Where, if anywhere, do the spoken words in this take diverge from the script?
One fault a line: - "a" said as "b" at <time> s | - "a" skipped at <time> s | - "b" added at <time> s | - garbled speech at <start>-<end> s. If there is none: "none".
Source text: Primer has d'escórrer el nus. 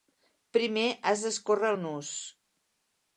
none